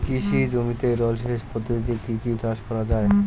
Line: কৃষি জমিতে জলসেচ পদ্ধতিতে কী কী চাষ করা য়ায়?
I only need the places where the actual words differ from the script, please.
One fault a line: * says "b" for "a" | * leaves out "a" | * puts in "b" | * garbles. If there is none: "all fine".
all fine